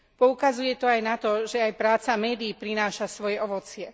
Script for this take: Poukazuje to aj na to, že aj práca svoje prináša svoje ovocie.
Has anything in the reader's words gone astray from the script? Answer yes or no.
yes